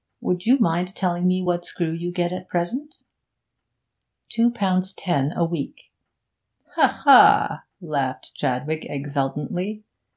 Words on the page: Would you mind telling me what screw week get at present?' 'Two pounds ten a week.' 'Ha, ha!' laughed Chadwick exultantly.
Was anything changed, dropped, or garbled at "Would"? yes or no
no